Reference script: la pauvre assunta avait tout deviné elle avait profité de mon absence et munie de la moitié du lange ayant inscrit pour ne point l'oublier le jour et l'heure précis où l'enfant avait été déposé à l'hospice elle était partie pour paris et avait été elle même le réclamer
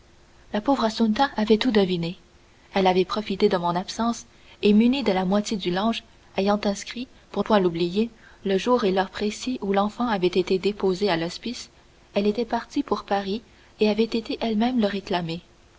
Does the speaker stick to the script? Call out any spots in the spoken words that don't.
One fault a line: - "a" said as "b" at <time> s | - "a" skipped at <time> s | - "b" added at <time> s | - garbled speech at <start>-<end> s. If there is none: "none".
- "ne" skipped at 7.4 s